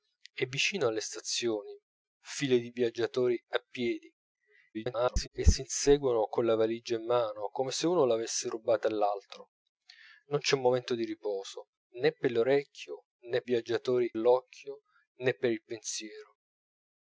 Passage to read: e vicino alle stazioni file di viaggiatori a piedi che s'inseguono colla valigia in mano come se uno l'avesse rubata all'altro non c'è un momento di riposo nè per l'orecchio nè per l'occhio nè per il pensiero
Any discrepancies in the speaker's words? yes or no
yes